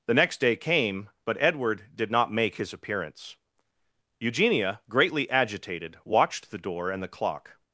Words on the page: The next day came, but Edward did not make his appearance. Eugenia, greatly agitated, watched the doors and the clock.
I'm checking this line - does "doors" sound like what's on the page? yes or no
no